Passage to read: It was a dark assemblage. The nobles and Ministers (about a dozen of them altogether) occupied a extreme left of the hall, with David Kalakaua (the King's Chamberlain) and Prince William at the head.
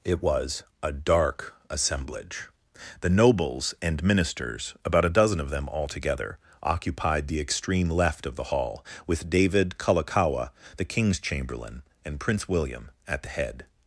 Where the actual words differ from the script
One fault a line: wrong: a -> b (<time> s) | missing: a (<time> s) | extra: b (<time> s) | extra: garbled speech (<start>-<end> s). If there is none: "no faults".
wrong: a -> the (7.3 s)